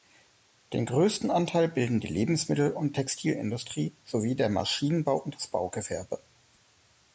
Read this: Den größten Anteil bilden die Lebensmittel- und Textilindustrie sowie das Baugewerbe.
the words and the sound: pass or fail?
fail